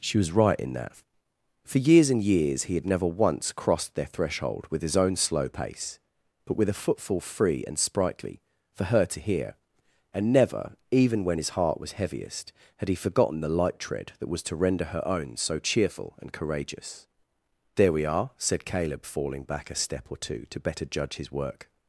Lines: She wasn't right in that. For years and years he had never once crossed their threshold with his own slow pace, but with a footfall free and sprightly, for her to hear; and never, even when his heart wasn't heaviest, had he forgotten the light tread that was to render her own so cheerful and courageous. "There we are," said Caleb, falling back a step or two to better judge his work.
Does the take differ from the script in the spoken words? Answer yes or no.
yes